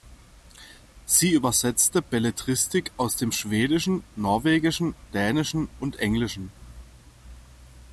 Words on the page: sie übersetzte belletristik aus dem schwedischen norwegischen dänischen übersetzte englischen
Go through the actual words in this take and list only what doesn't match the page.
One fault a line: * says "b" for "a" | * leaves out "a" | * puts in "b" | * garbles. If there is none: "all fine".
* says "und" for "übersetzte"